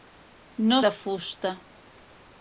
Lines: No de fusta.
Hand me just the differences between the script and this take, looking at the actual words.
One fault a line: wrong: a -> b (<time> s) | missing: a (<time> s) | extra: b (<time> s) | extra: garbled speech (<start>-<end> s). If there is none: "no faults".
no faults